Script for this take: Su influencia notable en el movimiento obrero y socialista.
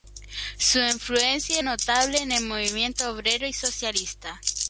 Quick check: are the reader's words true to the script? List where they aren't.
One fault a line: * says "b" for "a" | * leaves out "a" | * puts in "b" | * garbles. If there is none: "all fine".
all fine